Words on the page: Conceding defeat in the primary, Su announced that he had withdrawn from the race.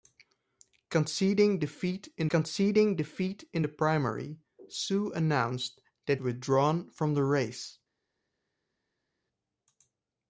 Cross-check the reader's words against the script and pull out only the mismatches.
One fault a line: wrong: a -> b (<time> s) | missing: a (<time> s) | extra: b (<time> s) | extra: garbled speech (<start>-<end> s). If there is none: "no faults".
extra: conceding defeat in (2.3 s)
missing: he had (6.2 s)